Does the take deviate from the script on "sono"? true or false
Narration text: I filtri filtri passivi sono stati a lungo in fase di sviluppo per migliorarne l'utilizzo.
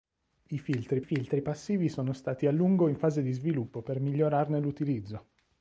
false